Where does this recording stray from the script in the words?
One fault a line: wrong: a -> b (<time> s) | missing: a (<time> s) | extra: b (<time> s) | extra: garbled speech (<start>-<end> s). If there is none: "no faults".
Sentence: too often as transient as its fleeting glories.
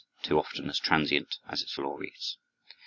missing: fleeting (1.7 s)